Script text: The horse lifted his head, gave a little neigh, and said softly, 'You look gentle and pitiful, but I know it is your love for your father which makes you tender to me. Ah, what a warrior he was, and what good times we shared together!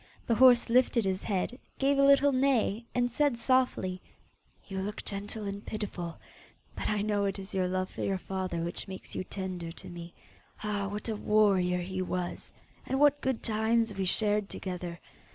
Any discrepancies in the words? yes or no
no